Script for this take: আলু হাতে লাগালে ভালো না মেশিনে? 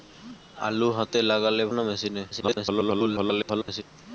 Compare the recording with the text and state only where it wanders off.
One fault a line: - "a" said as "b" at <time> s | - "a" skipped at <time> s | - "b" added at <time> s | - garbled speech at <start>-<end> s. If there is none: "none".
- "ভালো" skipped at 1.6 s
- garbled speech at 2.3-3.8 s